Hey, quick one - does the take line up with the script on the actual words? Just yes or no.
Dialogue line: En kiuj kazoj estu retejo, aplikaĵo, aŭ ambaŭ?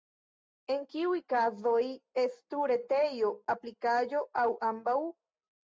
yes